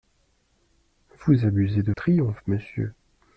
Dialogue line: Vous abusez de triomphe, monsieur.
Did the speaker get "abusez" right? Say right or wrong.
right